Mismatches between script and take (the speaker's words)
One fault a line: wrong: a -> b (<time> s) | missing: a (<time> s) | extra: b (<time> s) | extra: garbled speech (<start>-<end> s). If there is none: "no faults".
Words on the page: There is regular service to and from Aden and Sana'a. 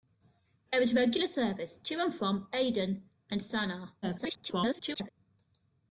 extra: garbled speech (4.0-5.1 s)